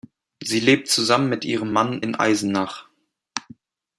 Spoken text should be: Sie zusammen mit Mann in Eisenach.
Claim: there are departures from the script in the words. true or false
true